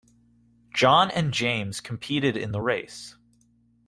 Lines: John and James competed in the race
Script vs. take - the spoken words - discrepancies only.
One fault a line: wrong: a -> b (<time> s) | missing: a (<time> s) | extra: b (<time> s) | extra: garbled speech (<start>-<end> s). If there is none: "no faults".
no faults